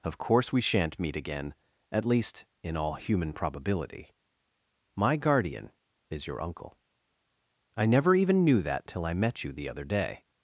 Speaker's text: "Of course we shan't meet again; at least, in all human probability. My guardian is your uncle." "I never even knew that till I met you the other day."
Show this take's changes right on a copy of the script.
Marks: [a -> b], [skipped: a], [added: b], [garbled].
"Of course we shan't meet again; at least, in all human probability. My guardian is your uncle." "I never even knew that till I met you the other day."